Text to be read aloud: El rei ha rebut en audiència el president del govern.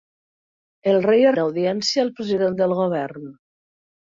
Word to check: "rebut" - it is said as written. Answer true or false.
false